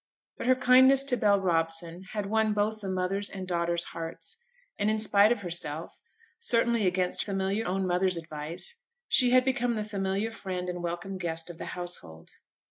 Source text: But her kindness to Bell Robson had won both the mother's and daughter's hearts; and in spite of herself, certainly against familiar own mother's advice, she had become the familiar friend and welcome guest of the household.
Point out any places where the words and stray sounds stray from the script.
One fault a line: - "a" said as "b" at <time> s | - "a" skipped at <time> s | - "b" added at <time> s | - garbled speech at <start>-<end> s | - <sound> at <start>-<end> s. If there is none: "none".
none